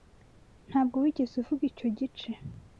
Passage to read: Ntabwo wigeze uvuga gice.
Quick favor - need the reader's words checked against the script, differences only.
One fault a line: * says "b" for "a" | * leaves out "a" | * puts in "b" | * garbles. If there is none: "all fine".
* puts in "icyo"